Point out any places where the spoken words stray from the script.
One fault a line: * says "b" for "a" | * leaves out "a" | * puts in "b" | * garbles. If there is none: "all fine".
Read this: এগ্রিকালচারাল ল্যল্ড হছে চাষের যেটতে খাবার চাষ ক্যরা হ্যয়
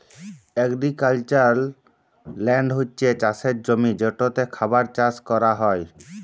* puts in "জমি"